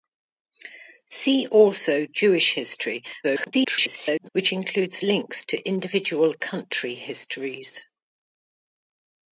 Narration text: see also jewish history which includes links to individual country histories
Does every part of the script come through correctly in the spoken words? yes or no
no